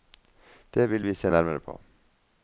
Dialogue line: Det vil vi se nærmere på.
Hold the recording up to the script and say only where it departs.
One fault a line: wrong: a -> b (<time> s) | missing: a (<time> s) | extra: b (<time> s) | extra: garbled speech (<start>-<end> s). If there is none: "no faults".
no faults